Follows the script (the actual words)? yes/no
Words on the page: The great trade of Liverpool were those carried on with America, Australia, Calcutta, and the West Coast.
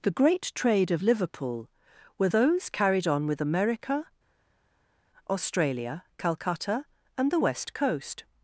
yes